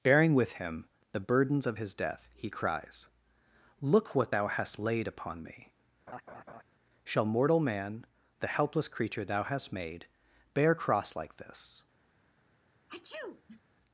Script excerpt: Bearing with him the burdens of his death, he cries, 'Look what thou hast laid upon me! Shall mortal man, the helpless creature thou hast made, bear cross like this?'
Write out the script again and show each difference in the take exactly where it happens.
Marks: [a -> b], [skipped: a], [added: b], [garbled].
Bearing with him the burdens of his death, he cries, 'Look what thou hast laid upon me! Shall mortal man, the helpless creature thou hast made, bear cross like this?'